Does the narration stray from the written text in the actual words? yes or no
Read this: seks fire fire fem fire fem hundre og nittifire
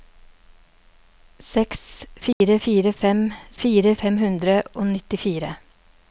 no